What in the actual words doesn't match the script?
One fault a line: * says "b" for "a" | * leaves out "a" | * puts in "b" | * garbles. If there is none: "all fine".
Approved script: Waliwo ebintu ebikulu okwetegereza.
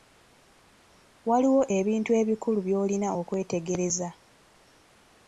* puts in "by'olina"